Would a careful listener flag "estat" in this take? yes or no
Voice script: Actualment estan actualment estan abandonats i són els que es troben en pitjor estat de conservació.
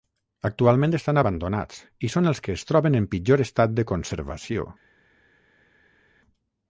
no